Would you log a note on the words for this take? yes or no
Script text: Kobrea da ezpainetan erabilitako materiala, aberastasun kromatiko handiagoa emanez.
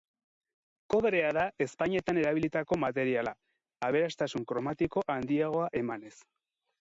no